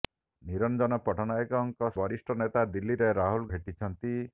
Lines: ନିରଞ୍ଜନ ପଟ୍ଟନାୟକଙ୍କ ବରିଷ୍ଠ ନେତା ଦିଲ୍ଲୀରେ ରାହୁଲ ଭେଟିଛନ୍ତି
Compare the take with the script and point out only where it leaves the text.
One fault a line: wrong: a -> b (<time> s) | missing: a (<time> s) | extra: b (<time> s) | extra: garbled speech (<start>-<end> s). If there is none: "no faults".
no faults